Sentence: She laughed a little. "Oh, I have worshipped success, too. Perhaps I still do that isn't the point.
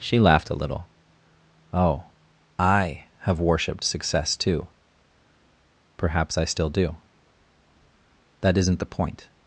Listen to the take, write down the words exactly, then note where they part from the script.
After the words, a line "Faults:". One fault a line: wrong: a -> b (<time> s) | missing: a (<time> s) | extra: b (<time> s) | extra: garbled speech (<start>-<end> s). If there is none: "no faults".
She laughed a little. "Oh, I have worshipped success, too. Perhaps I still do that isn't the point.
Faults:
no faults